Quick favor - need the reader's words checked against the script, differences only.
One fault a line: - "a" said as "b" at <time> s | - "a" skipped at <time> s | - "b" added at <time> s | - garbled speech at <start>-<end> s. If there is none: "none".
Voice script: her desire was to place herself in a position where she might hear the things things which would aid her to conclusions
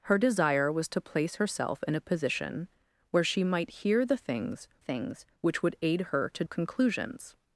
none